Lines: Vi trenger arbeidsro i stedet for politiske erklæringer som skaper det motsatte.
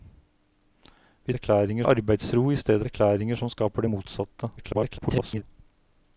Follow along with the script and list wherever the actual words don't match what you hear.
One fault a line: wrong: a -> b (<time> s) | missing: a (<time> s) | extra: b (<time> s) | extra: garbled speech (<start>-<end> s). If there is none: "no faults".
wrong: trenger -> erklæringer (1.3 s)
missing: for politiske (2.9 s)
extra: garbled speech (4.6-5.4 s)